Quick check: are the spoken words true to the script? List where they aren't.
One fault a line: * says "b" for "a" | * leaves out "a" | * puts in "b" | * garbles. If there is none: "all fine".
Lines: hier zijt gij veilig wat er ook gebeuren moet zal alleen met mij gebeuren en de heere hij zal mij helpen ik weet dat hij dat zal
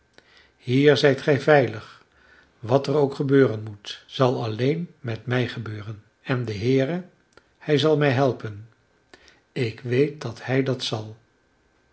all fine